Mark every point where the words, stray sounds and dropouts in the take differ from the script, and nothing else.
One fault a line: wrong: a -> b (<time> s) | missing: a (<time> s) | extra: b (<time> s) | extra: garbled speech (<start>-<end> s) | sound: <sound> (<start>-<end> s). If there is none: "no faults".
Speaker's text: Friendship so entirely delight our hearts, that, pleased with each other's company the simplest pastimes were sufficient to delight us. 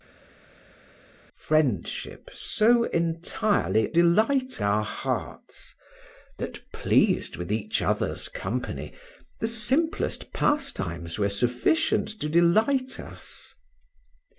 no faults